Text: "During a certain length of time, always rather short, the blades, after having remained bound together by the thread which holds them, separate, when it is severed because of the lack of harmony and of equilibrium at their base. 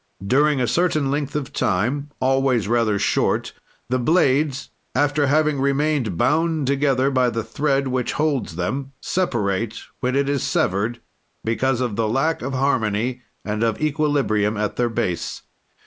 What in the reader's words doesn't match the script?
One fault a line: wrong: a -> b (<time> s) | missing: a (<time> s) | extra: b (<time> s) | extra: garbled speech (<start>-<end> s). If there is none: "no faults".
no faults